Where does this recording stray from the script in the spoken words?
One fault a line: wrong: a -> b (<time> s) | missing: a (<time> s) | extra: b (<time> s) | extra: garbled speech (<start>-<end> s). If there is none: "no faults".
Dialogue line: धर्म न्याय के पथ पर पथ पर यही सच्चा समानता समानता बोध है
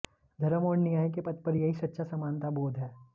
extra: और (0.7 s)
missing: पथ पर (1.6 s)
missing: समानता (2.5 s)